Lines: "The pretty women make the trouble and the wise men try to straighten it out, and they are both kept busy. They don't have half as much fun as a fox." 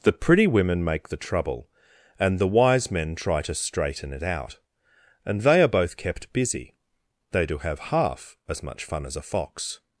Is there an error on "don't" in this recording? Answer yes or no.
yes